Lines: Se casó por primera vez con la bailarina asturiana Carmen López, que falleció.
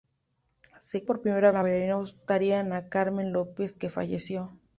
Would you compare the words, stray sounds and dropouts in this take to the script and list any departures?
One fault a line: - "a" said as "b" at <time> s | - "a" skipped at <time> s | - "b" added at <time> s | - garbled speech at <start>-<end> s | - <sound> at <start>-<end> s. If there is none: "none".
- "casó" skipped at 1.0 s
- "vez con" skipped at 1.5 s